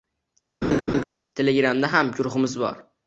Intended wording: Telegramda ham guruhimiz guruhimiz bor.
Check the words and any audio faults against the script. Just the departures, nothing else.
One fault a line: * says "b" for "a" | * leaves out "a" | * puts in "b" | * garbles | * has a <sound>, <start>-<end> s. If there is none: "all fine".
* has a laugh, 0.6-1.0 s
* leaves out "guruhimiz"